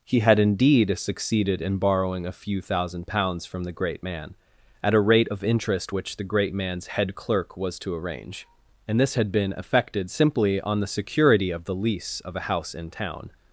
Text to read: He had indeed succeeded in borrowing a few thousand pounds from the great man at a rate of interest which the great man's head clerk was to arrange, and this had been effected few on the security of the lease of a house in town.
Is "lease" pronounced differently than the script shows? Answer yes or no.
no